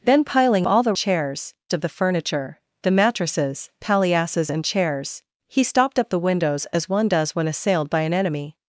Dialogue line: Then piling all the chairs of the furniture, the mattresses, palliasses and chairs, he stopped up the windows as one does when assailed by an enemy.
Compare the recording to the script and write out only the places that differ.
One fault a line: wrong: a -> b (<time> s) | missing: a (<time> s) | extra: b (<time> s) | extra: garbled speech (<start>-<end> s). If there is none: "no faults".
no faults